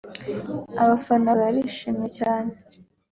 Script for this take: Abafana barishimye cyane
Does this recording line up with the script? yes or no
yes